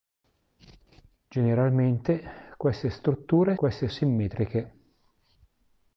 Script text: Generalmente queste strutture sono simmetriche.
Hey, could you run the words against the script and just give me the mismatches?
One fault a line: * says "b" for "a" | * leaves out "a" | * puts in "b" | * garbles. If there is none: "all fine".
* says "queste" for "sono"